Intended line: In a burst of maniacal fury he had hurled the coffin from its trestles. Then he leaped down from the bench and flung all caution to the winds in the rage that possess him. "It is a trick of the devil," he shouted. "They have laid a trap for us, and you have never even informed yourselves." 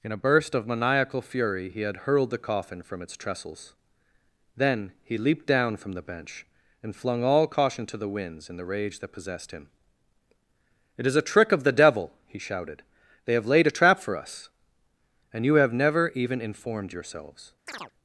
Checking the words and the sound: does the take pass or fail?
fail